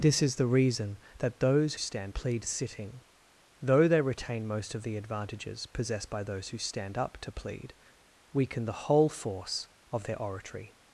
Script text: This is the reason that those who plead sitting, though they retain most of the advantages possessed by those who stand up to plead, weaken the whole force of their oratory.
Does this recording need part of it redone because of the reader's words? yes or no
yes